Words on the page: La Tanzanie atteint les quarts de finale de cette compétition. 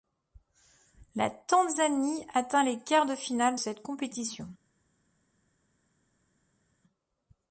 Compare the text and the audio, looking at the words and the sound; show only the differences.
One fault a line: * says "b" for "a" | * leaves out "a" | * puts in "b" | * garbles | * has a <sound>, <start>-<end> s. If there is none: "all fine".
* leaves out "de"